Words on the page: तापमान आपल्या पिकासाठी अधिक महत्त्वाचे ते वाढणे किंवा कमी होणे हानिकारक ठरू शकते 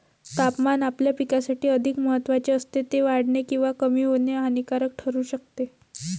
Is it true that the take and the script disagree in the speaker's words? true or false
true